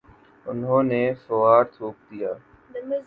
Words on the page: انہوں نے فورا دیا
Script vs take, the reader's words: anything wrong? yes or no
yes